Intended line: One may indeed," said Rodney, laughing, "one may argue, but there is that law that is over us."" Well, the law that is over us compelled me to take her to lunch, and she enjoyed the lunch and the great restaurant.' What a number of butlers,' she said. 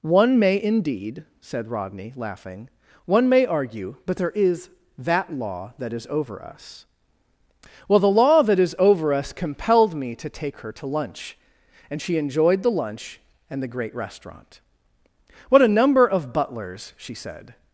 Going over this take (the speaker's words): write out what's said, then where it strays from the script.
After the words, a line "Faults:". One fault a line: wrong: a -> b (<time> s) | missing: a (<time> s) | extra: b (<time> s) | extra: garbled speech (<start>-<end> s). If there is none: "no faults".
One may indeed," said Rodney, laughing, "one may argue, but there is that law that is over us."" Well, the law that is over us compelled me to take her to lunch, and she enjoyed the lunch and the great restaurant.' What a number of butlers,' she said.
Faults:
no faults